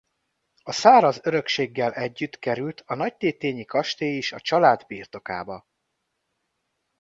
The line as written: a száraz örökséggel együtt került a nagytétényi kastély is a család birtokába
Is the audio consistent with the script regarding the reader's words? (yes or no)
yes